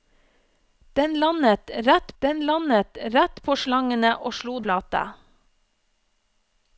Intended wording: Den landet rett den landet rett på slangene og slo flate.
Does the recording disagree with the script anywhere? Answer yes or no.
no